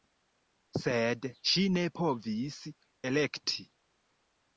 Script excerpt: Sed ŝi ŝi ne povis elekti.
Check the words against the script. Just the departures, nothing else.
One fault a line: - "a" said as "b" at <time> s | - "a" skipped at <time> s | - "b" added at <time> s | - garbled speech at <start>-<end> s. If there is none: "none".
- "ŝi" skipped at 1.6 s